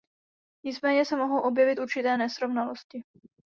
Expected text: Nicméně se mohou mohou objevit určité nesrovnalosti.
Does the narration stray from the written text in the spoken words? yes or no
yes